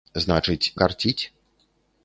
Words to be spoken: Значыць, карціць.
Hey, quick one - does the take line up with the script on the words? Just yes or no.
yes